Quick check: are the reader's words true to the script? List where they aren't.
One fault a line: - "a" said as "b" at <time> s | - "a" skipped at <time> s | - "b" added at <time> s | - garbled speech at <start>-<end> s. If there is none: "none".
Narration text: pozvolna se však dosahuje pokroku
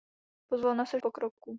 - "však dosahuje" skipped at 1.0 s